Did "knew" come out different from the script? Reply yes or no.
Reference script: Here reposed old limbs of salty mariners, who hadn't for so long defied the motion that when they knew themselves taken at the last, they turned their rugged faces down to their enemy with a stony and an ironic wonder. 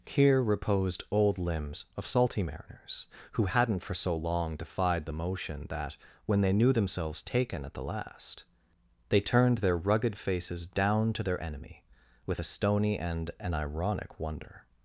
no